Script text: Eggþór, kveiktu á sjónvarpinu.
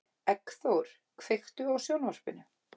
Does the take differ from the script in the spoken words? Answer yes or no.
no